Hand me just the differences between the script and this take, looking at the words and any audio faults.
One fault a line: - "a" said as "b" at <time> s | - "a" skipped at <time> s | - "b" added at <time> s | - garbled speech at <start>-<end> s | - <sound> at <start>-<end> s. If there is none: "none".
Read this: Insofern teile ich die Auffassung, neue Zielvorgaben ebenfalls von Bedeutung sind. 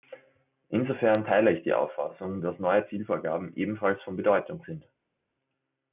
- "dass" added at 2.4 s